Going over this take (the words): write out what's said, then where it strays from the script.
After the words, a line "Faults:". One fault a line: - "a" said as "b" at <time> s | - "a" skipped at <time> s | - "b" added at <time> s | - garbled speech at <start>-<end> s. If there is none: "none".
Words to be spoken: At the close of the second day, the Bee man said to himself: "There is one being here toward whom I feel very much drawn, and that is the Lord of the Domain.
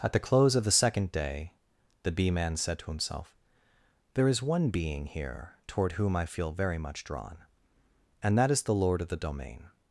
At the close of the second day, the Bee man said to himself: "There is one being here toward whom I feel very much drawn, and that is the Lord of the Domain.
Faults:
none